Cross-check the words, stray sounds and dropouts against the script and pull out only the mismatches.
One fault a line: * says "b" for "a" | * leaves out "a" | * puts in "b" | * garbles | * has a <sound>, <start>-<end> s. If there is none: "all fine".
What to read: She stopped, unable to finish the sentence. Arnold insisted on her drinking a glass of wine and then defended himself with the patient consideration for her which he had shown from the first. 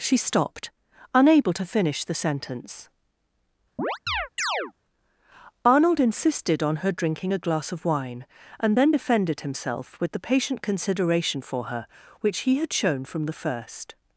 * has a chirp, 3.8-4.7 s